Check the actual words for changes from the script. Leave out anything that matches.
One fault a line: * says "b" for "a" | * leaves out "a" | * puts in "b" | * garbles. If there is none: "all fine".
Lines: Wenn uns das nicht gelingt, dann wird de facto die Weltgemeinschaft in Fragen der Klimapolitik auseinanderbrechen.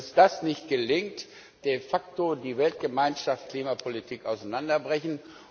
* leaves out "dann wird"
* leaves out "in Fragen der"